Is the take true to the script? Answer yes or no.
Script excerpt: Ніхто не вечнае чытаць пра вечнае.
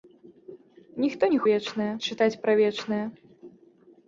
yes